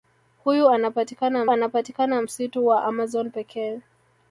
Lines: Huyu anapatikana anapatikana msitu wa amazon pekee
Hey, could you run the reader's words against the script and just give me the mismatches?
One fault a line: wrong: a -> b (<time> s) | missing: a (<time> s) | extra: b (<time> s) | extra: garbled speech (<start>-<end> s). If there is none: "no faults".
no faults